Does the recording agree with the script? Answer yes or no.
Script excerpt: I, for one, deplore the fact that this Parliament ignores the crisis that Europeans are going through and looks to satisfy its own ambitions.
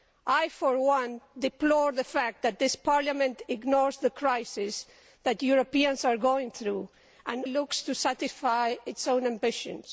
yes